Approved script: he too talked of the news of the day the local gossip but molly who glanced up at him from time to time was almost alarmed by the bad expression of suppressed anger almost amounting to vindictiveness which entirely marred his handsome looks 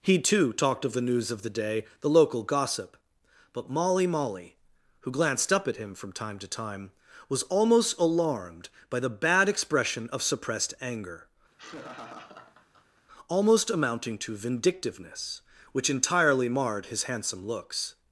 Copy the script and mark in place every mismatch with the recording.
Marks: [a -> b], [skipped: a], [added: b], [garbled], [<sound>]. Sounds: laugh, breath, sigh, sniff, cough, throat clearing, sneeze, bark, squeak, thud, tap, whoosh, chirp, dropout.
he too talked of the news of the day the local gossip but molly [added: molly] who glanced up at him from time to time was almost alarmed by the bad expression of suppressed anger [laugh] almost amounting to vindictiveness which entirely marred his handsome looks